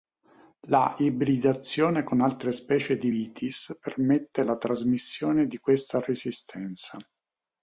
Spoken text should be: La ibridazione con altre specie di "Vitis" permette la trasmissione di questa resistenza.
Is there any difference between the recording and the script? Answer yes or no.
no